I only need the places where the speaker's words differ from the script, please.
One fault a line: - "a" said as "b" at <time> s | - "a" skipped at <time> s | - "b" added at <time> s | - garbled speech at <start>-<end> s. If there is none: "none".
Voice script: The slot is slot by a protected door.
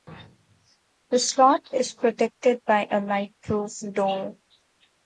- "slot" said as "protected" at 1.9 s
- "protected" said as "lightproof" at 3.0 s